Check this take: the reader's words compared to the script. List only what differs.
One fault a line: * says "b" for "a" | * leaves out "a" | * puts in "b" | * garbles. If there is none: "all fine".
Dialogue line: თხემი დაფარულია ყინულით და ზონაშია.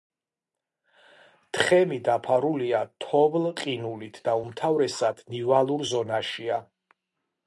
* puts in "თოვლ"
* puts in "უმთავრესად ნივალურ"